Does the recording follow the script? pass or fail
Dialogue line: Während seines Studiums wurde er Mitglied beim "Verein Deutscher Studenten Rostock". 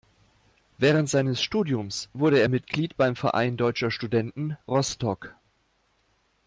pass